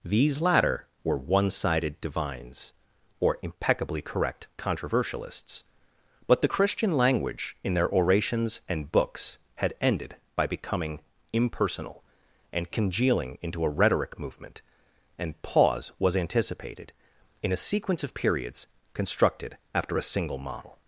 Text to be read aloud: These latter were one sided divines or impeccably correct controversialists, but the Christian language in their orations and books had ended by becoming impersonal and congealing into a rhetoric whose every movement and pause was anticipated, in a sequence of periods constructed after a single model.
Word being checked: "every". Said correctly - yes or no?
no